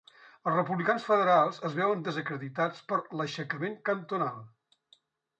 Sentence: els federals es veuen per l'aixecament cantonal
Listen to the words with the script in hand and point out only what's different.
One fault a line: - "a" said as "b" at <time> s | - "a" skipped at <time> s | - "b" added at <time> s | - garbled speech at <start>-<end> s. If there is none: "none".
- "republicans" added at 0.5 s
- "desacreditats" added at 2.1 s